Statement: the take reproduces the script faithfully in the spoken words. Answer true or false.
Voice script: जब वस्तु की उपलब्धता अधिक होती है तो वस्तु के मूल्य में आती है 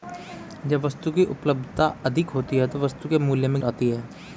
true